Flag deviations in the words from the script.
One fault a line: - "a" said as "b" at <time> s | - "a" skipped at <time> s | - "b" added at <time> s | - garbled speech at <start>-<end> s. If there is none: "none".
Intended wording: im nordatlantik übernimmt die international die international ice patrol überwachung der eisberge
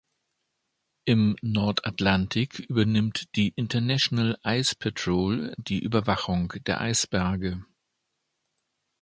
- "die international" skipped at 4.3 s
- "die" added at 5.6 s